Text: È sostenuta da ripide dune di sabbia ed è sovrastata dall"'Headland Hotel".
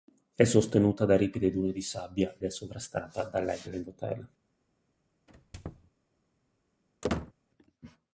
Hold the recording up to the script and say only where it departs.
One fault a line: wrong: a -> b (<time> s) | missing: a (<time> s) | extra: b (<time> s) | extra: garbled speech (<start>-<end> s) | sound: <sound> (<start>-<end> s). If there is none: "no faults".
missing: ed (2.4 s)
sound: squeak (5.3-5.9 s)
sound: squeak (7.0-7.3 s)